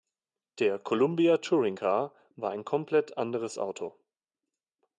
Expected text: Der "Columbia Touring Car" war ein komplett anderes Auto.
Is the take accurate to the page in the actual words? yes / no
yes